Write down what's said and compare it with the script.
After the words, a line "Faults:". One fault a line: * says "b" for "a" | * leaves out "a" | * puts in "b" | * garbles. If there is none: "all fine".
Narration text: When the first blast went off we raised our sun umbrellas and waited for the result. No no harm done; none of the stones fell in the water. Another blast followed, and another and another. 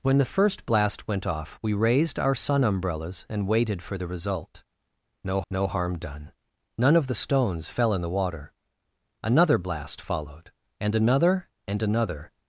When the first blast went off we raised our sun umbrellas and waited for the result. No no harm done; none of the stones fell in the water. Another blast followed, and another and another.
Faults:
all fine